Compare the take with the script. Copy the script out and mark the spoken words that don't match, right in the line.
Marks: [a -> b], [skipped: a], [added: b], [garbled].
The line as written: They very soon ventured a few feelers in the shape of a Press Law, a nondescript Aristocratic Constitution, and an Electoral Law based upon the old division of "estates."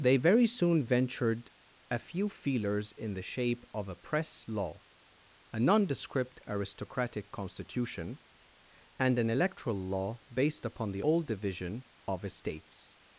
They very soon ventured a few feelers in the shape of a Press Law, a nondescript Aristocratic Constitution, and an Electoral Law based upon the old division of "estates."